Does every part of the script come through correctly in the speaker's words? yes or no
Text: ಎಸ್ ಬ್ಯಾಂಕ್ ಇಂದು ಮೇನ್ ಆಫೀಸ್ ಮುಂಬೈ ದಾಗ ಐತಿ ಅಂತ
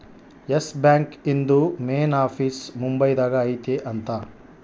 yes